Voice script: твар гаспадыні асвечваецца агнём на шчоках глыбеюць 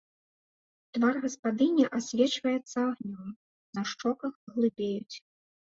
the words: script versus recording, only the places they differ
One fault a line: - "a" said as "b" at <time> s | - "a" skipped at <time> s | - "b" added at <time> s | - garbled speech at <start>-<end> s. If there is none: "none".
none